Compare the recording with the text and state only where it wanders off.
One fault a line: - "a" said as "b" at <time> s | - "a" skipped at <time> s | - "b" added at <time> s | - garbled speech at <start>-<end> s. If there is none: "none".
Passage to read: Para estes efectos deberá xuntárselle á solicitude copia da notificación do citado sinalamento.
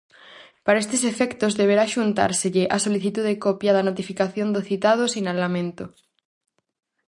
none